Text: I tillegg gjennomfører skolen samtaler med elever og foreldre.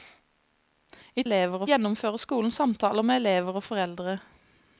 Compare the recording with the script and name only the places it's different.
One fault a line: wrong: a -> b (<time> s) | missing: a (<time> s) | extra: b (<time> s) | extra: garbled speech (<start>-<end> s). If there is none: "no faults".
wrong: tillegg -> elever (1.3 s)